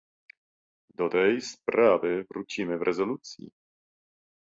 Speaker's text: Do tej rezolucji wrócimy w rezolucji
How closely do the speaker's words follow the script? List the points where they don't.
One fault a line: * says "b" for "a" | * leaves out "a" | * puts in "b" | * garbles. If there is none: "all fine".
* says "sprawy" for "rezolucji"